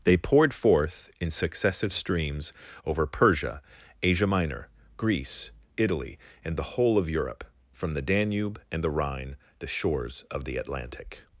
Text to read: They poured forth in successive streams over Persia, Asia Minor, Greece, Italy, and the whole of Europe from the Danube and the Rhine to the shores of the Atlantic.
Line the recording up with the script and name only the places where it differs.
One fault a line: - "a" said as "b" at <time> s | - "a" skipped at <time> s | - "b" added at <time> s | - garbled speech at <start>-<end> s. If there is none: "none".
- "to" skipped at 9.3 s